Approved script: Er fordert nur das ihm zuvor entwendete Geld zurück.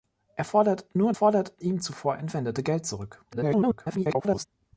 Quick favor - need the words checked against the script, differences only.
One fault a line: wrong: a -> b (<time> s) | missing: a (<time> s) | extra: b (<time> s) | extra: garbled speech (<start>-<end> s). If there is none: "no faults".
wrong: das -> fordert (1.1 s)
extra: garbled speech (3.3-4.5 s)